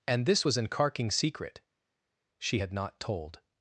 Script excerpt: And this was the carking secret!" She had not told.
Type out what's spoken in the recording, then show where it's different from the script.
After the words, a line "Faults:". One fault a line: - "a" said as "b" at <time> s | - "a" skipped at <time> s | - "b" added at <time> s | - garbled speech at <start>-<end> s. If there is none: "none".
And this was an carking secret!" She had not told.
Faults:
- "the" said as "an" at 0.6 s